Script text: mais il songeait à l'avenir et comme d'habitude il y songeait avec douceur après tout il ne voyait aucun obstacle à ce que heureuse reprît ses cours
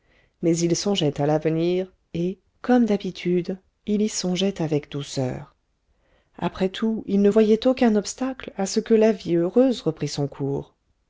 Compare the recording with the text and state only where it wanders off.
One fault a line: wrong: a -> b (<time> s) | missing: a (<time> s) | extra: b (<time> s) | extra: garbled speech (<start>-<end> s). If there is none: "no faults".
extra: la vie (8.9 s)
wrong: ses -> son (10.1 s)